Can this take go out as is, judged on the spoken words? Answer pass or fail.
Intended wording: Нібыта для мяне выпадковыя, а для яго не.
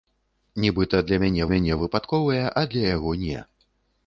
fail